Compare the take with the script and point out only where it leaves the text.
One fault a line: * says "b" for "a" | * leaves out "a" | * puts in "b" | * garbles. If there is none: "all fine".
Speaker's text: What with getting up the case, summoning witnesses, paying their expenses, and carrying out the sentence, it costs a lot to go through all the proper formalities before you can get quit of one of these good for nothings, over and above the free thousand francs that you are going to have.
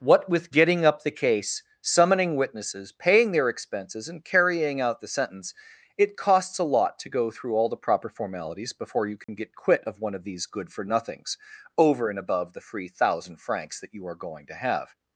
all fine